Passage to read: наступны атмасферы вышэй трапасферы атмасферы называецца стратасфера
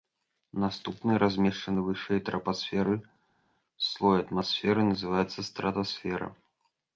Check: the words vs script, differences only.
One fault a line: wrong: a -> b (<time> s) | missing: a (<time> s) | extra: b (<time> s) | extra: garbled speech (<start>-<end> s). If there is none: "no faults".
wrong: атмасферы -> размешчаны (1.2 s)
extra: слой (3.9 s)